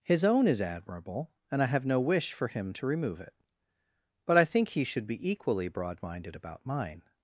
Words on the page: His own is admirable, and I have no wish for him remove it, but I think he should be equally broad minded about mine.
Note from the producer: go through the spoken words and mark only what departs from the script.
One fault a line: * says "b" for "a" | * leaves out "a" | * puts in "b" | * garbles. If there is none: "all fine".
* puts in "to"